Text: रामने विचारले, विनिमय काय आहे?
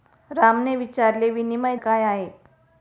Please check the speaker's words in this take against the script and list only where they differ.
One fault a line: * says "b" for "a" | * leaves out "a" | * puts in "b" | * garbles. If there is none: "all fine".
all fine